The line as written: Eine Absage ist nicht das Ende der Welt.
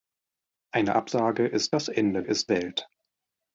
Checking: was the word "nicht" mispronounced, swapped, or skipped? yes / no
yes